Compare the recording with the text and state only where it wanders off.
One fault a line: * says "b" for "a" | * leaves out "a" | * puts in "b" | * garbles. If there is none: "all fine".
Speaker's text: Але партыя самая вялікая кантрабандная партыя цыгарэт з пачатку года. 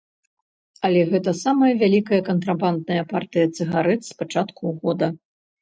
* says "гэта" for "партыя"